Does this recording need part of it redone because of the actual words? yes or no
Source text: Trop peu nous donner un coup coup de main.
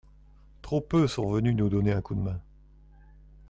yes